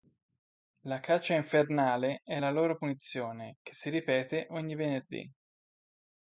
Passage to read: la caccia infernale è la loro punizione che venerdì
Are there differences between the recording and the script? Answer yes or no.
yes